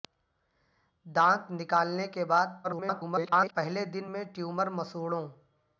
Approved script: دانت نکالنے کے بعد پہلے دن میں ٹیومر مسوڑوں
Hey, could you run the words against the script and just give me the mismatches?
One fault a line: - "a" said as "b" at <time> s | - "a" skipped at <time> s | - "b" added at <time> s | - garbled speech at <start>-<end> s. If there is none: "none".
- garbled speech at 2.6-3.5 s